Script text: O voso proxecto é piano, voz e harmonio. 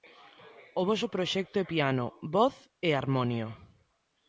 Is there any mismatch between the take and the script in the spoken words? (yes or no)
no